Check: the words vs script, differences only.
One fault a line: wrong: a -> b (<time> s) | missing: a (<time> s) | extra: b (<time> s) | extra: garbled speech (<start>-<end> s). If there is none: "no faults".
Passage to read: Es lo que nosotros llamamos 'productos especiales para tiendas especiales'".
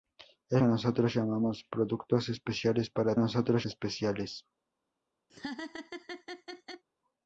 missing: lo (0.6 s)
wrong: tiendas -> nosotros (3.2 s)